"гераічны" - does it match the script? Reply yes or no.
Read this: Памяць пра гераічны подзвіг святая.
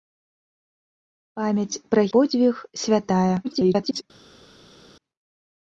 no